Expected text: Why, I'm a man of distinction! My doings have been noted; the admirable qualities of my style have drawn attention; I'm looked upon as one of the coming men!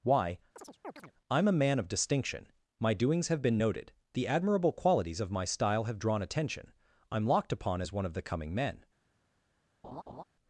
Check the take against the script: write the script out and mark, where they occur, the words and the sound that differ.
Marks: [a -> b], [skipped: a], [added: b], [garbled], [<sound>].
Why, [chirp] I'm a man of distinction! My doings have been noted; the admirable qualities of my style have drawn attention; I'm [looked -> locked] upon as one of the coming men! [laugh]